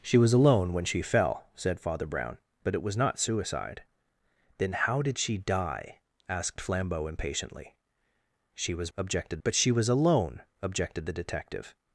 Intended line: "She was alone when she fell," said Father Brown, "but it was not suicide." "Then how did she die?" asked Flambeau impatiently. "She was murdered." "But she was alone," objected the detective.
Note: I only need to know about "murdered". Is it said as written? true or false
false